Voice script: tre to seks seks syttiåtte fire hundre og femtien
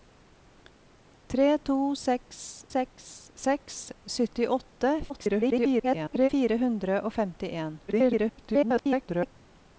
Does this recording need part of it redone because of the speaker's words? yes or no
yes